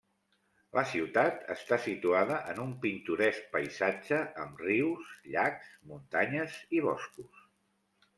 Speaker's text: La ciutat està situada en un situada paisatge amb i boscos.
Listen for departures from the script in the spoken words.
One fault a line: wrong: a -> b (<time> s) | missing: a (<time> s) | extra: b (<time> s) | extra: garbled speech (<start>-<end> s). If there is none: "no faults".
wrong: situada -> pintoresc (2.9 s)
extra: rius llacs muntanyes (4.7 s)